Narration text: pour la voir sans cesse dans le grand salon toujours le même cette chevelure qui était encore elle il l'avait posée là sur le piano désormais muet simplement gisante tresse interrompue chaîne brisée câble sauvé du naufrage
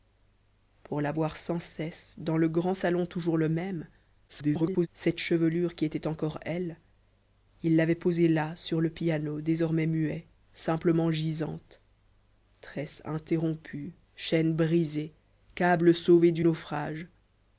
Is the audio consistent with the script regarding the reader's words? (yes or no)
no